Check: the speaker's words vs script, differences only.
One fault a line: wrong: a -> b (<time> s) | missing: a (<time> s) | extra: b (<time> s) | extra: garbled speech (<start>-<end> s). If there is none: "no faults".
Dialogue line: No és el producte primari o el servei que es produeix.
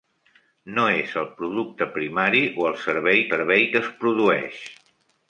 extra: servei (3.3 s)